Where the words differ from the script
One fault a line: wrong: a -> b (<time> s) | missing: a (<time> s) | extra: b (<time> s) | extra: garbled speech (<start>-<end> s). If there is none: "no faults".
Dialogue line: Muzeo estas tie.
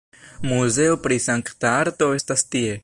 extra: pri sankta arto (1.0 s)